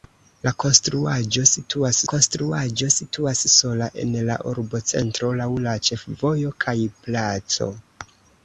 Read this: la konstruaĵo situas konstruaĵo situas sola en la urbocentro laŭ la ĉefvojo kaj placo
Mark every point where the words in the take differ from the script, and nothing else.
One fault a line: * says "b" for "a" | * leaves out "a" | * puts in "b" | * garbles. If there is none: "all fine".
all fine